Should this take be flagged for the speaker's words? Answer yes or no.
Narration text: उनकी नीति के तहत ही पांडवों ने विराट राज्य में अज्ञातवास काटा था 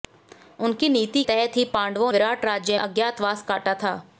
yes